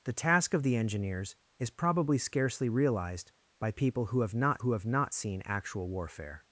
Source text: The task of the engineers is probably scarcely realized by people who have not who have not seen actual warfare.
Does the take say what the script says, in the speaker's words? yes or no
yes